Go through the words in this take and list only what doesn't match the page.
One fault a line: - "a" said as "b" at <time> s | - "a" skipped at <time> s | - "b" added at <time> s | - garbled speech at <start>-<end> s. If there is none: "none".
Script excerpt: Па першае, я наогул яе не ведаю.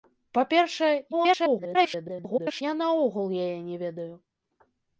- garbled speech at 1.1-2.6 s